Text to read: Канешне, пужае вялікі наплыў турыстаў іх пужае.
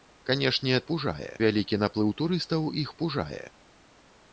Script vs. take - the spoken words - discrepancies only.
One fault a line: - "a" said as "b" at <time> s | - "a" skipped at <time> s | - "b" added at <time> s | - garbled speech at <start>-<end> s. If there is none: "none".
none